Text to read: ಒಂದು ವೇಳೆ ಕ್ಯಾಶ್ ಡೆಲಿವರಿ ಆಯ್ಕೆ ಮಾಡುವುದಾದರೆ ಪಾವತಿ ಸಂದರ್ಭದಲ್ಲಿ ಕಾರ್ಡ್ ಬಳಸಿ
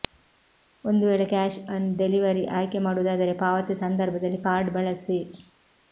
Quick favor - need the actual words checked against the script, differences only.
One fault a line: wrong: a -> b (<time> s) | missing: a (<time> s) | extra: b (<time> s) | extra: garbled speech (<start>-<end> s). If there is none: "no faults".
extra: ಆನ್ (1.7 s)